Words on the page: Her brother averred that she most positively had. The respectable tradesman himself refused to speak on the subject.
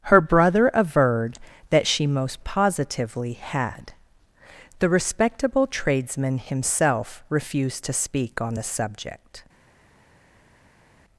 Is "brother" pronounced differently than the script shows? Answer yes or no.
no